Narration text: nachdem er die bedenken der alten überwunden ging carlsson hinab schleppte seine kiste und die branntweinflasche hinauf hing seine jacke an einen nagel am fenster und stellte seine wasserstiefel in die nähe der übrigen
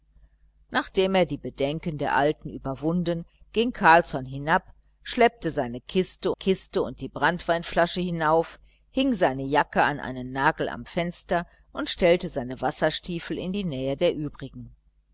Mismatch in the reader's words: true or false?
true